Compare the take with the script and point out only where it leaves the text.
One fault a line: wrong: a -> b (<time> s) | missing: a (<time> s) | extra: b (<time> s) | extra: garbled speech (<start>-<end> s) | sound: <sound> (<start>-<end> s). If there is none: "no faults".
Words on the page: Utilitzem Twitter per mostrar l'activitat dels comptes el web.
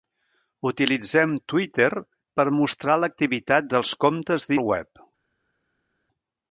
no faults